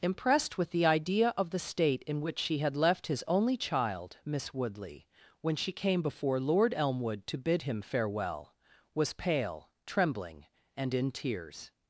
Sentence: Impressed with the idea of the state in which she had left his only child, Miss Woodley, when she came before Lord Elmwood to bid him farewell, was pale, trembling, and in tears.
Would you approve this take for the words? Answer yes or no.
yes